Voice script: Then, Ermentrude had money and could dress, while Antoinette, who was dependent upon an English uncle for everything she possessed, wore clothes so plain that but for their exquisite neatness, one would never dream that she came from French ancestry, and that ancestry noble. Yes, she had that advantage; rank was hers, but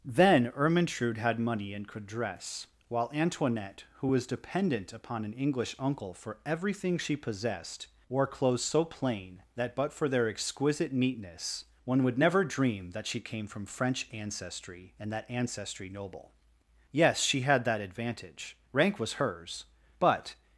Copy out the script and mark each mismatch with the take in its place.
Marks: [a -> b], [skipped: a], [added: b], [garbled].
Then, Ermentrude had money and could dress, while Antoinette, who was dependent upon an English uncle for everything she possessed, wore clothes so plain that but for their exquisite neatness, one would never dream that she came from French ancestry, and that ancestry noble. Yes, she had that advantage; rank was hers, but